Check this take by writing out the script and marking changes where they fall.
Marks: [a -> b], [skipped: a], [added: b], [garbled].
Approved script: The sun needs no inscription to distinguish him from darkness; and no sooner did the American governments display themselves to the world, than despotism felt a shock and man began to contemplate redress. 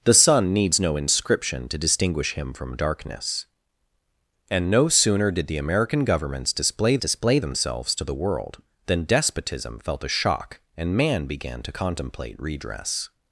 The sun needs no inscription to distinguish him from darkness; and no sooner did the American governments display [added: display] themselves to the world, than despotism felt a shock and man began to contemplate redress.